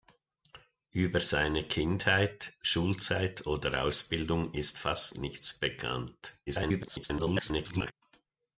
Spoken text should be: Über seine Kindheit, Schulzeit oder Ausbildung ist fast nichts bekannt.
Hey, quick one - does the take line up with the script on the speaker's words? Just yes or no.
no